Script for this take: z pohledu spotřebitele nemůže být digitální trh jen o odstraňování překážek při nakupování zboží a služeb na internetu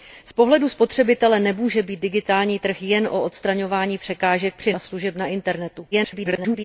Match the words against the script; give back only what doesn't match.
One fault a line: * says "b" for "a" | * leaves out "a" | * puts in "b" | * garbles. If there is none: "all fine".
* leaves out "nakupování zboží"
* garbles